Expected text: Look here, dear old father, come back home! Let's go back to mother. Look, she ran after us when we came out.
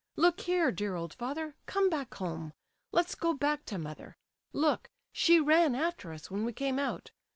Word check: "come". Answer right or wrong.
right